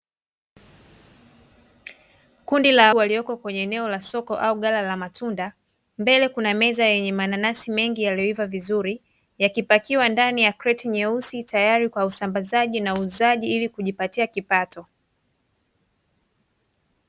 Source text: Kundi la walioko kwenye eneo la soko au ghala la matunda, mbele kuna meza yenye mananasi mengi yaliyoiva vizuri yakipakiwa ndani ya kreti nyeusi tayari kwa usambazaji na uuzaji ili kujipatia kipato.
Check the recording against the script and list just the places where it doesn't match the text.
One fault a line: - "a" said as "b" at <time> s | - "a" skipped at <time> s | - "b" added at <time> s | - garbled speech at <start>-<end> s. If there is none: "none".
none